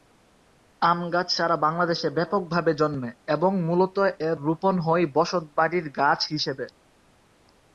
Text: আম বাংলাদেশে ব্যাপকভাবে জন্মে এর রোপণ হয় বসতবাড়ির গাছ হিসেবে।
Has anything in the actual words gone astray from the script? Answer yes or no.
yes